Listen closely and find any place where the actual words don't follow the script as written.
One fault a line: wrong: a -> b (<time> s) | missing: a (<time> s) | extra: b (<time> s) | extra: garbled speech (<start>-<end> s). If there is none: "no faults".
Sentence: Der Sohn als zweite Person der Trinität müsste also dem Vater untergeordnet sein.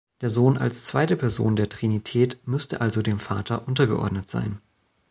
no faults